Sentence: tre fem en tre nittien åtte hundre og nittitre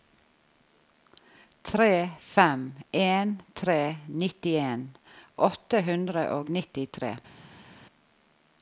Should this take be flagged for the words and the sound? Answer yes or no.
no